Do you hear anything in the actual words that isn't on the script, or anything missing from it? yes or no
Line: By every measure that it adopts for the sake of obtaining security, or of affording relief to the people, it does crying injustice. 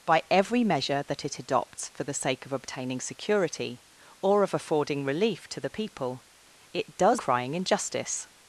no